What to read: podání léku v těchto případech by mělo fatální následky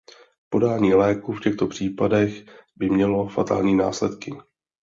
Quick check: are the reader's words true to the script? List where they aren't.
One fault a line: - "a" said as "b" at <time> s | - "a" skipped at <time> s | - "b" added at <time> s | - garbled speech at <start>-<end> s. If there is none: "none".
none